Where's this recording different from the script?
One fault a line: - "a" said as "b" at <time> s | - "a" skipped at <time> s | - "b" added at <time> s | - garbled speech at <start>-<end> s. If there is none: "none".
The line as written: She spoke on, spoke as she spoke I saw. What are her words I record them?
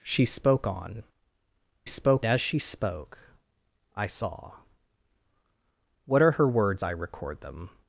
none